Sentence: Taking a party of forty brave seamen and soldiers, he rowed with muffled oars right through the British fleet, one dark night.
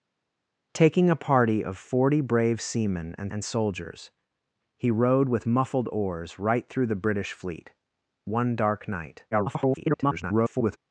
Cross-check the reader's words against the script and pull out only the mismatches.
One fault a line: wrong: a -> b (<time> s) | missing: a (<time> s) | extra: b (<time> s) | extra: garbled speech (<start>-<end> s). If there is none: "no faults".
extra: and (3.3 s)
extra: garbled speech (9.3-10.8 s)